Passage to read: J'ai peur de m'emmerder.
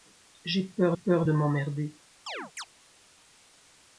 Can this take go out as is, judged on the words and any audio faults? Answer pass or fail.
fail